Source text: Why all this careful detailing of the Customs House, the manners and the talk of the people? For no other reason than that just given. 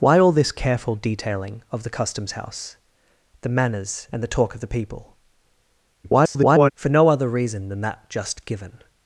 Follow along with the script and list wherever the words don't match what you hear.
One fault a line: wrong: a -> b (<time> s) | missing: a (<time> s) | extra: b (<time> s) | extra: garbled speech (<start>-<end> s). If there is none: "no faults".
extra: garbled speech (6.0-6.7 s)